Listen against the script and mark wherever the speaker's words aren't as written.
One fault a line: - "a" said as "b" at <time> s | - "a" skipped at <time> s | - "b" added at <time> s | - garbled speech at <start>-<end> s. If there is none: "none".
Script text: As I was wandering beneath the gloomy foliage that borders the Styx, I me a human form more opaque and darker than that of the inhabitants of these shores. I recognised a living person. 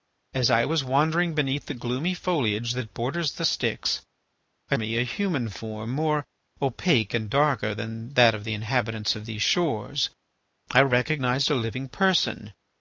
none